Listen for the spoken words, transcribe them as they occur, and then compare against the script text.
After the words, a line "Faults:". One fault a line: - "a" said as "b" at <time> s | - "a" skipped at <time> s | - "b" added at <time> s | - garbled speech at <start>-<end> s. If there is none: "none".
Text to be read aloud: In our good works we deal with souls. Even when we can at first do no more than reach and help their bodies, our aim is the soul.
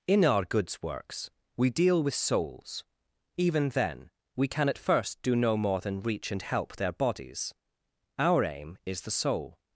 In our goods works we deal with souls. Even then we can at first do no more than reach and help their bodies, our aim is the soul.
Faults:
- "good" said as "goods" at 0.4 s
- "when" said as "then" at 3.7 s